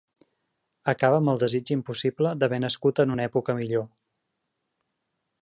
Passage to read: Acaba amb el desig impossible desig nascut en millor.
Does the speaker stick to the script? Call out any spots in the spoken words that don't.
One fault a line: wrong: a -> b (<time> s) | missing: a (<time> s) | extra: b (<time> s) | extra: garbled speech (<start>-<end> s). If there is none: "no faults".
wrong: desig -> d'haver (2.5 s)
extra: una època (3.2 s)